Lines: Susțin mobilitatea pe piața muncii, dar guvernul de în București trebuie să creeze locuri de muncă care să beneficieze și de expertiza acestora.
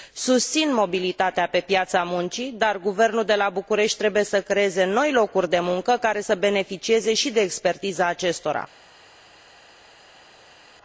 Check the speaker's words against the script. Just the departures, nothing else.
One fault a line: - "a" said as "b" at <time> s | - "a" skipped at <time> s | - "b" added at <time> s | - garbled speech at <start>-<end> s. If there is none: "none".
- "în" said as "la" at 3.4 s
- "noi" added at 4.8 s